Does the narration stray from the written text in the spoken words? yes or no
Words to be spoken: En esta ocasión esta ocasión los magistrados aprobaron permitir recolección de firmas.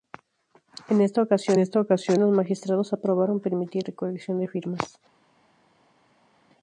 no